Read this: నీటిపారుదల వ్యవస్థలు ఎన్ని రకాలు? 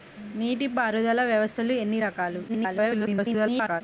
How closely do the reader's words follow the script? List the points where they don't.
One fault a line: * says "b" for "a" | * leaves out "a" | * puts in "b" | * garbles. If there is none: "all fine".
* garbles